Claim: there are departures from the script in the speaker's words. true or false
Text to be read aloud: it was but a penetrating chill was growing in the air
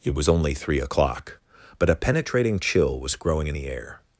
true